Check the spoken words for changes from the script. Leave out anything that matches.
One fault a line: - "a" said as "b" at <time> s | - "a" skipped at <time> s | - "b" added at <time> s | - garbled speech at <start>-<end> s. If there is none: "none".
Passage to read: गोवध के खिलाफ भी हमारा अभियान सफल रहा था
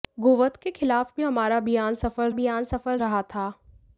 - "अभियान सफल" added at 2.3 s